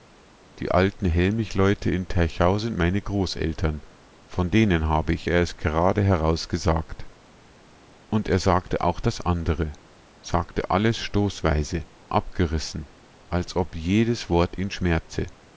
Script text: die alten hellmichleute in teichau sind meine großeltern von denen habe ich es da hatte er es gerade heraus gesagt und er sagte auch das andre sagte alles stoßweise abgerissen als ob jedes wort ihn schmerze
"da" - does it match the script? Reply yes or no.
no